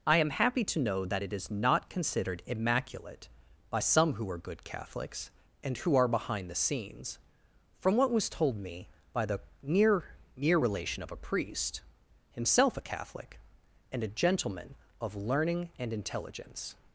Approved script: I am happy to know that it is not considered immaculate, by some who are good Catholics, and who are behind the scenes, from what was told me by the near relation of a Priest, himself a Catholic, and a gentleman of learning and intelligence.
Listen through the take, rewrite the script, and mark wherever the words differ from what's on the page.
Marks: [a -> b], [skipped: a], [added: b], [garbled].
I am happy to know that it is not considered immaculate, by some who are good Catholics, and who are behind the scenes, from what was told me by the near [added: near] relation of a Priest, himself a Catholic, and a gentleman of learning and intelligence.